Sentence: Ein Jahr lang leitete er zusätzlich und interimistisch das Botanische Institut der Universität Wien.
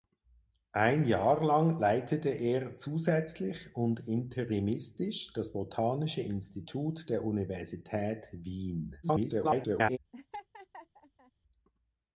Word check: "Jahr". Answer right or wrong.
right